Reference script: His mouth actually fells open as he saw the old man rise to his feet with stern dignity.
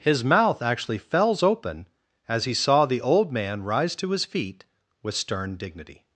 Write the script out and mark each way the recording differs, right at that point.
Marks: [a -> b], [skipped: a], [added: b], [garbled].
His mouth actually fells open as he saw the old man rise to his feet with stern dignity.